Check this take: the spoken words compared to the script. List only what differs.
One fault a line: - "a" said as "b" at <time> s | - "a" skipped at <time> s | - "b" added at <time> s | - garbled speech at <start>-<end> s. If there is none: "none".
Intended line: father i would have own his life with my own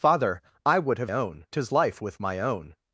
none